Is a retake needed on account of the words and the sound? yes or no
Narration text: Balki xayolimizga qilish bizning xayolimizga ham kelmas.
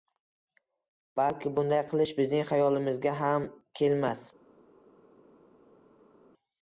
yes